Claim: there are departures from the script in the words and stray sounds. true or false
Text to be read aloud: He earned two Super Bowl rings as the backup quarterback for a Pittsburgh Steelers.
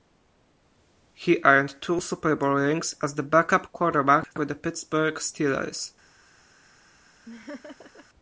true